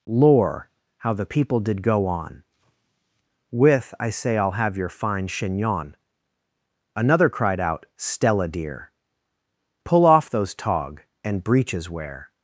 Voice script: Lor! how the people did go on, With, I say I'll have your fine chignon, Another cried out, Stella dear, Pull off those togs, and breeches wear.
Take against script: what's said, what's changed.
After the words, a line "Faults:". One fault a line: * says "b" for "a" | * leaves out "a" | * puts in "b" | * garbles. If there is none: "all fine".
Lor! how the people did go on, With, I say I'll have your fine chignon, Another cried out, Stella dear, Pull off those tog, and breeches wear.
Faults:
* says "tog" for "togs"